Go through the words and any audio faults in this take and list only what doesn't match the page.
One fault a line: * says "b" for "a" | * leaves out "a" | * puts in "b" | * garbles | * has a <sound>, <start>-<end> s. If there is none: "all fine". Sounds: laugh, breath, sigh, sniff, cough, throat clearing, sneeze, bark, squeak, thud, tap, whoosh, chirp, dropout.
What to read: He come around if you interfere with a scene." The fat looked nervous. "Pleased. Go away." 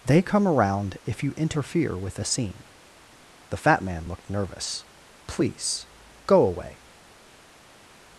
* says "They" for "He"
* puts in "man"
* says "Please" for "Pleased"